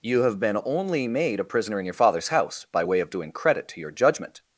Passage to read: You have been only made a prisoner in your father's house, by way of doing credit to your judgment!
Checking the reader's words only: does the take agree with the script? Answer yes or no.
yes